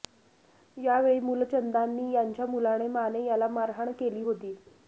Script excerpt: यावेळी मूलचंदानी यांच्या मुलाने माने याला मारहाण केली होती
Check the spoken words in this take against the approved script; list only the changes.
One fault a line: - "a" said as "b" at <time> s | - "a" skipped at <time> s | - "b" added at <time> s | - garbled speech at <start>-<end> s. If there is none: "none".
none